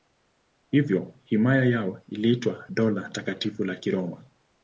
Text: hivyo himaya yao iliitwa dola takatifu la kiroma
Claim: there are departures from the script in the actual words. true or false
false